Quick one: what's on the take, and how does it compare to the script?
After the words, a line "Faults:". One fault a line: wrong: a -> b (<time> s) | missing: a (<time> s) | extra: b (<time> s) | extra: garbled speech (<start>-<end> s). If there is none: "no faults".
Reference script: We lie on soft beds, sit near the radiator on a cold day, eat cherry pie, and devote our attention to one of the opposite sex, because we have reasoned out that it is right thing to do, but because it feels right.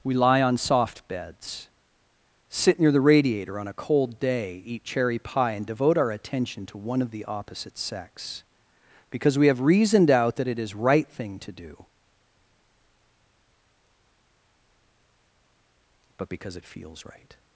We lie on soft beds, sit near the radiator on a cold day, eat cherry pie, and devote our attention to one of the opposite sex, because we have reasoned out that it is right thing to do, but because it feels right.
Faults:
no faults